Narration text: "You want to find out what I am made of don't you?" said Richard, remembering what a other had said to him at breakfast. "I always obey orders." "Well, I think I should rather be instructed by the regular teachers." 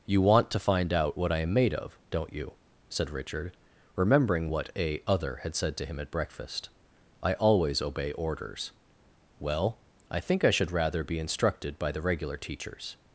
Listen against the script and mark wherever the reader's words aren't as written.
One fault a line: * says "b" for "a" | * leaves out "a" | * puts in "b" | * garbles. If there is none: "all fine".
all fine